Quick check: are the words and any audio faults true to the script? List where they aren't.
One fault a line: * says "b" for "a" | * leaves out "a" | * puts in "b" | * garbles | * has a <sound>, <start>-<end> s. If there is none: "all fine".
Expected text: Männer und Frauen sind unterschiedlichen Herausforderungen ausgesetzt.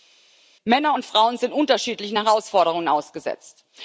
all fine